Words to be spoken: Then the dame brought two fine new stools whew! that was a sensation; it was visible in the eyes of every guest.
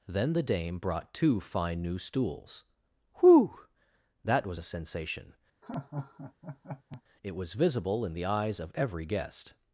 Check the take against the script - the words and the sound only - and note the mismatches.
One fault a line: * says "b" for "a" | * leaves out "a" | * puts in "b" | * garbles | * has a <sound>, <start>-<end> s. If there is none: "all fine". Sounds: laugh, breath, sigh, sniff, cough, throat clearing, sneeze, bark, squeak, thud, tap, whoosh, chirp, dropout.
* has a laugh, 5.6-7.0 s